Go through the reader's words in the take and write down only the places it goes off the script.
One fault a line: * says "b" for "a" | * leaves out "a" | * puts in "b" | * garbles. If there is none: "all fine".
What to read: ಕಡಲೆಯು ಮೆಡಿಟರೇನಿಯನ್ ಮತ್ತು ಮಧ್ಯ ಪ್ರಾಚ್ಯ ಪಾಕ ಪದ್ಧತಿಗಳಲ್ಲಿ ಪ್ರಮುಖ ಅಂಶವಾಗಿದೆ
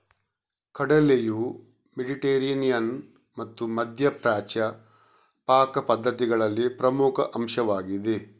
all fine